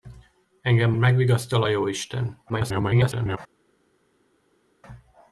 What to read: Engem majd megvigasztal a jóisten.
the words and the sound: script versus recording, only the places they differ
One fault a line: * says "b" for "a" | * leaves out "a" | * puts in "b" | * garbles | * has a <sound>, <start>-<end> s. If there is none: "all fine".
* leaves out "majd"
* garbles